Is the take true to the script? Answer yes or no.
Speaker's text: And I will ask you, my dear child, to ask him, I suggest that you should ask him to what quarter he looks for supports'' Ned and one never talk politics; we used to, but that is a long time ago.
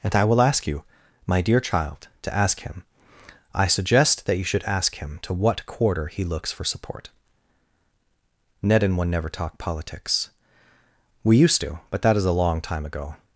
no